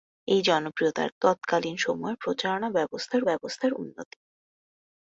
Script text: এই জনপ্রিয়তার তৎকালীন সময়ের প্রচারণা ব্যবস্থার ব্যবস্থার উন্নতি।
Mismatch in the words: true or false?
false